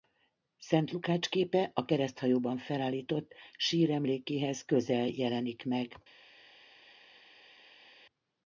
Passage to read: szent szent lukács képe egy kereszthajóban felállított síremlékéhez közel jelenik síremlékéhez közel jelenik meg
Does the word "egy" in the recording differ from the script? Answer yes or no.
yes